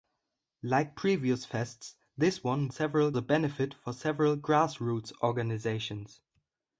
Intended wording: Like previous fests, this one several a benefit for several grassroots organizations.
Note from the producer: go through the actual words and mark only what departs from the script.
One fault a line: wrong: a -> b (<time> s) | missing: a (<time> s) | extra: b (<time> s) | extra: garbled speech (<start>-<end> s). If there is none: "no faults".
no faults